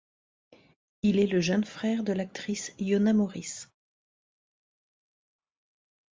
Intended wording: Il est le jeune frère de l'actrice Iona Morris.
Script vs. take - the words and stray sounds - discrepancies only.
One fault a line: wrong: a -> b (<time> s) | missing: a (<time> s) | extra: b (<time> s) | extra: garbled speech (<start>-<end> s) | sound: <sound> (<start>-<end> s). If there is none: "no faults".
no faults